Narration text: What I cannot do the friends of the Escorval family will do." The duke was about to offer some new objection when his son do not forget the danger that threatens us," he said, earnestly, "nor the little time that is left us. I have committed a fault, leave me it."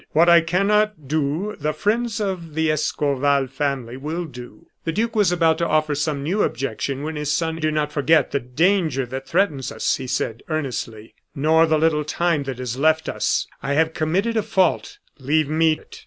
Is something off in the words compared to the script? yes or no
no